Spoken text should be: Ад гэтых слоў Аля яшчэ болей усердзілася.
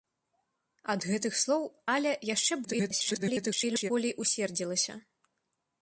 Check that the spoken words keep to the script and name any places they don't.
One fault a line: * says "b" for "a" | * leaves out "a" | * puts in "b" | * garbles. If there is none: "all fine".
* garbles